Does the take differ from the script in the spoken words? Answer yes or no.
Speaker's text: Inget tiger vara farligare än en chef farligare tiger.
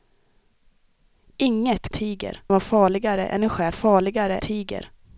no